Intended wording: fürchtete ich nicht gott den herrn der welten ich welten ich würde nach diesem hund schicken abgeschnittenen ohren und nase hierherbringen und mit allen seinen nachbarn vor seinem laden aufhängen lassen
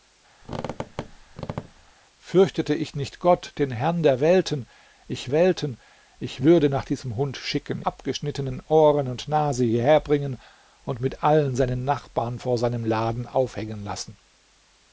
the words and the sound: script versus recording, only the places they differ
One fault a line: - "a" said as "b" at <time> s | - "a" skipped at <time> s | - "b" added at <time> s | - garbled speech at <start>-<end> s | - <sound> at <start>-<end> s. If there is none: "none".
- squeak at 0.4-1.9 s